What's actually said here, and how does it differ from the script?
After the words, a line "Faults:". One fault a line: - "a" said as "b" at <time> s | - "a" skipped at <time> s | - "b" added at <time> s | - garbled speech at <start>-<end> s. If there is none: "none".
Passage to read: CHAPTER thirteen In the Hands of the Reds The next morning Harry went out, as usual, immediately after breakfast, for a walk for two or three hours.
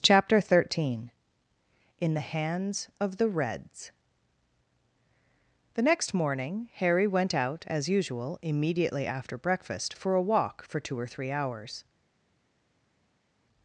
CHAPTER thirteen In the Hands of the Reds The next morning Harry went out, as usual, immediately after breakfast, for a walk for two or three hours.
Faults:
none